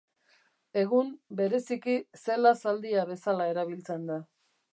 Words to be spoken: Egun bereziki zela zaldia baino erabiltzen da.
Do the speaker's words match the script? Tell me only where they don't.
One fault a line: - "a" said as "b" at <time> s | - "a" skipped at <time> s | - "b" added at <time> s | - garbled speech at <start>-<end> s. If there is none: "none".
- "baino" said as "bezala" at 3.1 s